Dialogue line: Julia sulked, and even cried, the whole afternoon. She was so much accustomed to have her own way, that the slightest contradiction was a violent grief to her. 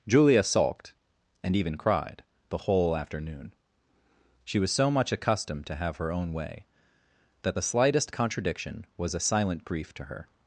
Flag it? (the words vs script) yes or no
yes